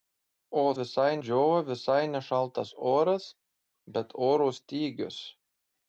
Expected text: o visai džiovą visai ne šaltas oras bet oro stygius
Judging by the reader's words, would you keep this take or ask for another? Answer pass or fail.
pass